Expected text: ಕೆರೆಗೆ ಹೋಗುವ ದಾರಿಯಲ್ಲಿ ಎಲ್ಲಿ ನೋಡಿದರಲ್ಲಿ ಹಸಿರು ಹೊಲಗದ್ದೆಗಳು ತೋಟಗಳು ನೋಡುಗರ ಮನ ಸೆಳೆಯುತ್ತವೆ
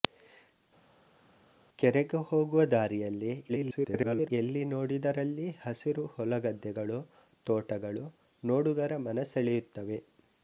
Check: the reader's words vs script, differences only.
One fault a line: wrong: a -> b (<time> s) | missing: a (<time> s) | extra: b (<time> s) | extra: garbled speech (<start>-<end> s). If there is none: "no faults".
extra: garbled speech (3.5-4.3 s)